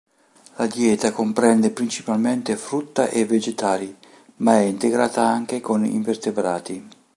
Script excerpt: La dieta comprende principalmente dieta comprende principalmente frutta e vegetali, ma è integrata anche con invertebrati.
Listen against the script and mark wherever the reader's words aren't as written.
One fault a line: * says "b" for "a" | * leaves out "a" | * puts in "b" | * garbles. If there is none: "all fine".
* leaves out "dieta comprende principalmente"